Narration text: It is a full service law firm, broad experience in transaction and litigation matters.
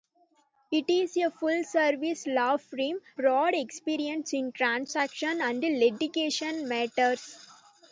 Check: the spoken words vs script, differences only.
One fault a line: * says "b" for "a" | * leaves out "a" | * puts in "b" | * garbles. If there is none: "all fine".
all fine